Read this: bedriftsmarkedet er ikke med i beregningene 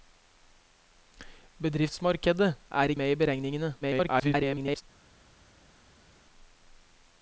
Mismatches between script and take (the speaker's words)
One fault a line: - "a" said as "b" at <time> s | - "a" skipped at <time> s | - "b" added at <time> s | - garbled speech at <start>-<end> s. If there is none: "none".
- "ikke" skipped at 2.9 s
- garbled speech at 3.8-4.8 s